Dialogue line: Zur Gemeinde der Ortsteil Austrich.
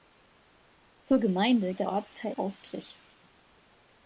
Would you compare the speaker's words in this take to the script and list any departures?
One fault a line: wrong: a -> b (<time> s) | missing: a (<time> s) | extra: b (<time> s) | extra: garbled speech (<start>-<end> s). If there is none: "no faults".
no faults